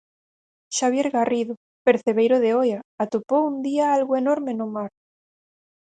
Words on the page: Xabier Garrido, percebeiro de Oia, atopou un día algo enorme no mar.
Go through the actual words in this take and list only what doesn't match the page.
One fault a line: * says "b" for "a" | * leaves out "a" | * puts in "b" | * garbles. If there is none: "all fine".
all fine